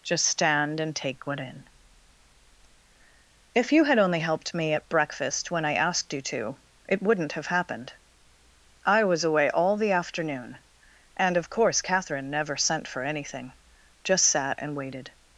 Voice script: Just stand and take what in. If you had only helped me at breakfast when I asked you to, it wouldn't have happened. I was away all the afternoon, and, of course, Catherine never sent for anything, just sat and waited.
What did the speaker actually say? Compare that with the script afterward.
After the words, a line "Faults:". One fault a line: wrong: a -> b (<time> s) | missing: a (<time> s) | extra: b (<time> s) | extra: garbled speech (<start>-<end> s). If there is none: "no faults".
Just stand and take what in. If you had only helped me at breakfast when I asked you to, it wouldn't have happened. I was away all the afternoon, and, of course, Catherine never sent for anything, just sat and waited.
Faults:
no faults